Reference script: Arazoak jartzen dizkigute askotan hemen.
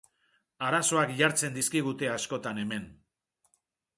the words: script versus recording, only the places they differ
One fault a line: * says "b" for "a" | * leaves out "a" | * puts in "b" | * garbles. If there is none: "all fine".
all fine